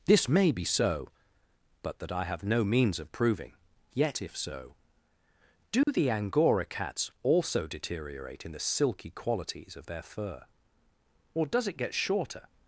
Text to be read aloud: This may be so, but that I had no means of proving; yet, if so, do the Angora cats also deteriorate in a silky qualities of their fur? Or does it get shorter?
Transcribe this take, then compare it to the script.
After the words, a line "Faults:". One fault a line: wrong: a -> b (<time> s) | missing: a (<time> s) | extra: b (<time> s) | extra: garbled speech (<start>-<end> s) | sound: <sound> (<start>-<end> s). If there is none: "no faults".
This may be so, but that I have no means of proving; yet, if so, do the Angora cats also deteriorate in the silky qualities of their fur? Or does it get shorter?
Faults:
wrong: had -> have (2.2 s)
sound: dropout (5.8-5.9 s)
wrong: a -> the (8.5 s)